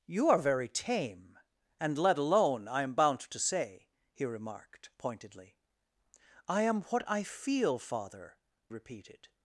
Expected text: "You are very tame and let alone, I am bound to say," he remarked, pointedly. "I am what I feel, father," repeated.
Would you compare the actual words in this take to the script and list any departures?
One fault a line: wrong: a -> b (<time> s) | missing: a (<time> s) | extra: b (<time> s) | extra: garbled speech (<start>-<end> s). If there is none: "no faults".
no faults